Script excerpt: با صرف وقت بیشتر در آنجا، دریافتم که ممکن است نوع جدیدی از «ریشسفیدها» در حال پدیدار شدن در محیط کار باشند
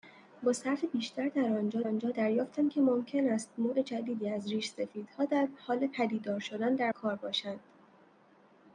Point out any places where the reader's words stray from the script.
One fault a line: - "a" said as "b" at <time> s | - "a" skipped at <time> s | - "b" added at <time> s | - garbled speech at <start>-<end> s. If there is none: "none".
- "وقت" skipped at 0.8 s
- "آنجا" added at 1.8 s
- "محیط" skipped at 6.9 s